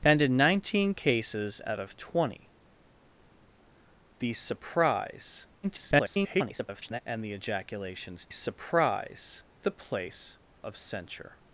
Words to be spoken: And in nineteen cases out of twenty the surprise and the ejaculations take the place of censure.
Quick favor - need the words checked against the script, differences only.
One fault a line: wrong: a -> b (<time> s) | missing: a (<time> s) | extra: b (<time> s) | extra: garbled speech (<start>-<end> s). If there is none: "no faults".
extra: garbled speech (5.6-7.0 s)
wrong: take -> surprise (8.3 s)